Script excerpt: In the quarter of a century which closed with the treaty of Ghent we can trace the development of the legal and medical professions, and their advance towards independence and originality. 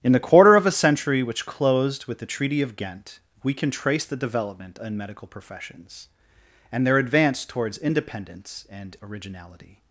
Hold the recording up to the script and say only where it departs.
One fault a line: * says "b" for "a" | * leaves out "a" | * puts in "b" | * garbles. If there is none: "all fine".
* leaves out "of the legal"